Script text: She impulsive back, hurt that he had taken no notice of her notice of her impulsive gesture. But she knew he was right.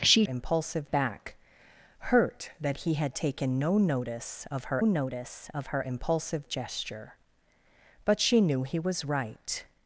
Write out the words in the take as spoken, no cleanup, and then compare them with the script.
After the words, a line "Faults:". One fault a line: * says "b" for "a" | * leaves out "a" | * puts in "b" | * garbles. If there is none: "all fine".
She impulsive back, hurt that he had taken no notice of her notice of her impulsive gesture. But she knew he was right.
Faults:
all fine